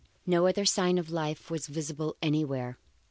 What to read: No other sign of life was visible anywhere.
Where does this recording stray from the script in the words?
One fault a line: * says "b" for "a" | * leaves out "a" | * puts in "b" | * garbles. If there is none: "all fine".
all fine